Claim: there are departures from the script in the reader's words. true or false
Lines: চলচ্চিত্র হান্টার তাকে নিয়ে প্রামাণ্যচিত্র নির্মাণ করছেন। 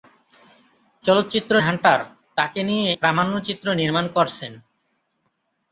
false